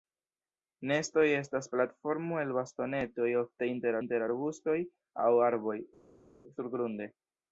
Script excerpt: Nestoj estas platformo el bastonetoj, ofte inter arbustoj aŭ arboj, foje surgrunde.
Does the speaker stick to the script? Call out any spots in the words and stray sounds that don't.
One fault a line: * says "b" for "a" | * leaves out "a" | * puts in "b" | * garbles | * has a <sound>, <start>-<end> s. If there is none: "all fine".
* puts in "inter"
* leaves out "foje"